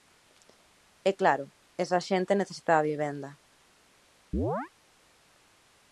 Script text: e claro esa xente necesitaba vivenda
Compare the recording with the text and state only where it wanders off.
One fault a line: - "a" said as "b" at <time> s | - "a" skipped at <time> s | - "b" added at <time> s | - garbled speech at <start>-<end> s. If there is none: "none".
none